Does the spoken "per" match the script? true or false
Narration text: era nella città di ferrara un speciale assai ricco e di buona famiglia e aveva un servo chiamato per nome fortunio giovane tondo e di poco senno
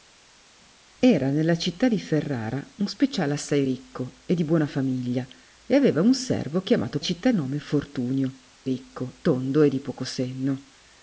false